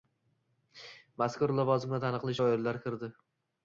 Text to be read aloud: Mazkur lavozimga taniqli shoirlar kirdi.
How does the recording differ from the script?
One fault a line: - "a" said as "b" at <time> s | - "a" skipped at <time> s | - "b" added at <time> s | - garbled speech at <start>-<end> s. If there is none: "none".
none